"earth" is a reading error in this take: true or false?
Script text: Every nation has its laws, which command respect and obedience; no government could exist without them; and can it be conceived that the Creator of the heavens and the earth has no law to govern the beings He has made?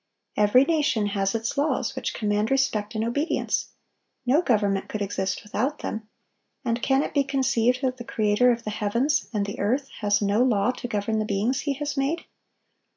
false